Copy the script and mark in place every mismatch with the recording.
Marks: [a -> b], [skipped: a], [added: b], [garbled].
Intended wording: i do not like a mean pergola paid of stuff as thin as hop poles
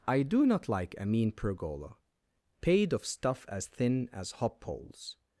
i do not like a mean pergola paid of stuff as thin as hop poles